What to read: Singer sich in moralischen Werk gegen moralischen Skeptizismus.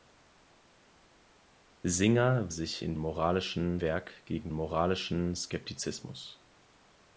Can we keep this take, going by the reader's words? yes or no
yes